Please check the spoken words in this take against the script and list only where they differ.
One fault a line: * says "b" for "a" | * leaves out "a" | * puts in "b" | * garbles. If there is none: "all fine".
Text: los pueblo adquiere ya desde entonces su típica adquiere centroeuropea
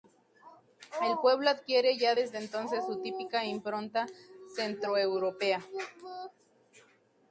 * says "el" for "los"
* says "impronta" for "adquiere"